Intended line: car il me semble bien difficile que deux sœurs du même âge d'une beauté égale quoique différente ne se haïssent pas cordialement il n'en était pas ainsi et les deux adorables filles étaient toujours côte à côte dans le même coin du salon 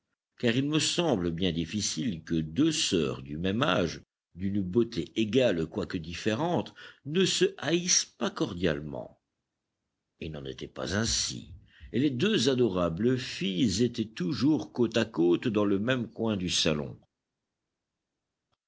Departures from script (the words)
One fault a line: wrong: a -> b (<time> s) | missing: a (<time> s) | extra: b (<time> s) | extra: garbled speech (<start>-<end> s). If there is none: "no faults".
no faults